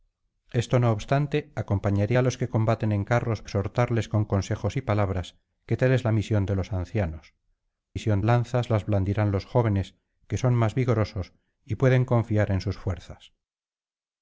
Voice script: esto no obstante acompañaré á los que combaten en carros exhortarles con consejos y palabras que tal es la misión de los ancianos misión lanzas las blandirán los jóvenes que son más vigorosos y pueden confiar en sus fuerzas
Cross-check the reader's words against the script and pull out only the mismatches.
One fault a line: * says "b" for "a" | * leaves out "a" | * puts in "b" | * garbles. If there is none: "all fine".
all fine